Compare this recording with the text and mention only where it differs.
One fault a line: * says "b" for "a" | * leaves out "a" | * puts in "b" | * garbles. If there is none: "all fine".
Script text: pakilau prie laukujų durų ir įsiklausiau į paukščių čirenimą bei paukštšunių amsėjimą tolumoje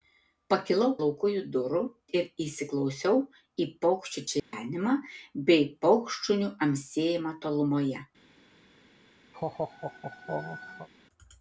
* leaves out "prie"